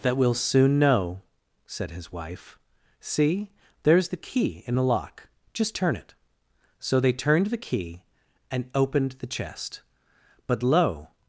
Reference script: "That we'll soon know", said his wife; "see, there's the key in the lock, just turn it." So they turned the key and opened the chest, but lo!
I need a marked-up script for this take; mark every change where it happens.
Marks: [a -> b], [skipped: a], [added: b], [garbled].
"That we'll soon know", said his wife; "see, there's the key in the lock, just turn it." So they turned the key and opened the chest, but lo!